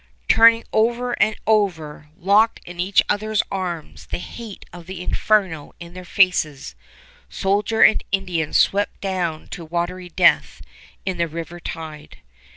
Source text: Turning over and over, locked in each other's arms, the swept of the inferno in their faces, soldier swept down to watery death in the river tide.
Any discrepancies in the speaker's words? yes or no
yes